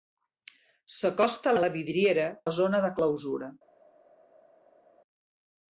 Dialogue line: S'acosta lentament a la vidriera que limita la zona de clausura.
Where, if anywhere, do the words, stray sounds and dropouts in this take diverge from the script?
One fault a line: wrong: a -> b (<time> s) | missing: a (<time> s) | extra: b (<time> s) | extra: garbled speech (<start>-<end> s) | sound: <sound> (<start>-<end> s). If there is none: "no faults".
missing: lentament (1.5 s)
missing: que limita (2.3 s)